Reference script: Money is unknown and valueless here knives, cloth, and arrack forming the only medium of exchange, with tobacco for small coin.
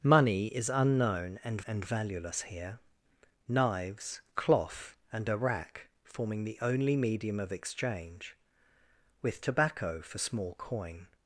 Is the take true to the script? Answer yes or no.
no